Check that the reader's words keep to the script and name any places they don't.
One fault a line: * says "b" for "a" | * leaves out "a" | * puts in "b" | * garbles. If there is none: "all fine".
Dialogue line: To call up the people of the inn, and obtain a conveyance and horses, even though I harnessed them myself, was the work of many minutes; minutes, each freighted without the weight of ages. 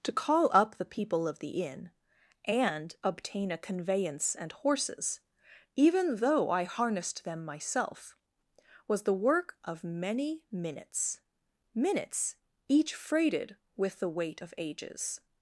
* says "with" for "without"